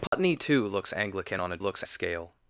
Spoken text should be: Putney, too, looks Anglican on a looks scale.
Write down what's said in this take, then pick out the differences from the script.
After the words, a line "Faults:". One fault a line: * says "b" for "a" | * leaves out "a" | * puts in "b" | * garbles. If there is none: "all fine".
Putney, too, looks Anglican on a looks scale.
Faults:
all fine